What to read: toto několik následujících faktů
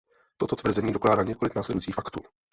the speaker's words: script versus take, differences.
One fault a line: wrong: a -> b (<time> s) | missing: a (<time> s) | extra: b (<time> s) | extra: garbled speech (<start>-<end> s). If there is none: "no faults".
extra: tvrzení dokládá (0.6 s)